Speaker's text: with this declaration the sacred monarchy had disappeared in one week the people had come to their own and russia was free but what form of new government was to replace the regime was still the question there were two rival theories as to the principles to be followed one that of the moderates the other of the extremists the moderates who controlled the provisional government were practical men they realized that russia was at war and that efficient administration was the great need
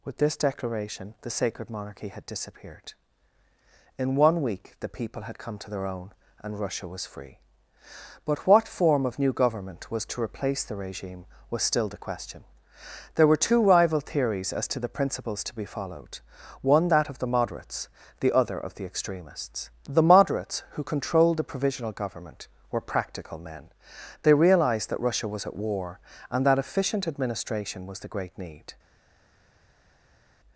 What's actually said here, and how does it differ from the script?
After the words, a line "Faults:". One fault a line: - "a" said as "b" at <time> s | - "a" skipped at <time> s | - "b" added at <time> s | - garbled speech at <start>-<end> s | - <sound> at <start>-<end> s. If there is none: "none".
with this declaration the sacred monarchy had disappeared in one week the people had come to their own and russia was free but what form of new government was to replace the regime was still the question there were two rival theories as to the principles to be followed one that of the moderates the other of the extremists the moderates who controlled the provisional government were practical men they realized that russia was at war and that efficient administration was the great need
Faults:
none